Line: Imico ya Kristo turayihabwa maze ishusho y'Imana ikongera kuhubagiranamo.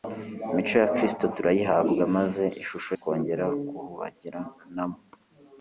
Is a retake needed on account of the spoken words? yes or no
yes